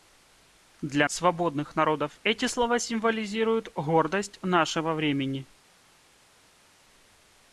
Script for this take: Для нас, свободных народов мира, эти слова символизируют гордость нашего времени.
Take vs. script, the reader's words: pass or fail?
fail